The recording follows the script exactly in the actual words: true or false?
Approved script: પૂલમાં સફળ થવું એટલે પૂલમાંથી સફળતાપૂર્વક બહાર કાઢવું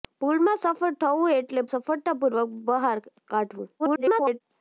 false